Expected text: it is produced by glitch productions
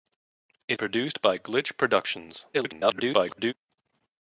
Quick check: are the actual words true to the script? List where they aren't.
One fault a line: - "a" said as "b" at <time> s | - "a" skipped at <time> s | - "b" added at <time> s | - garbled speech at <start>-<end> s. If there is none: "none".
- "is" skipped at 0.8 s
- garbled speech at 2.5-3.5 s